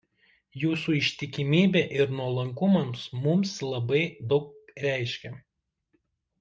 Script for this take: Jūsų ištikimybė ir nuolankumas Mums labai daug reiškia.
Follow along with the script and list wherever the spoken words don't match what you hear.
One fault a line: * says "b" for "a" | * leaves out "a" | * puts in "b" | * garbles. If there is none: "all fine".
all fine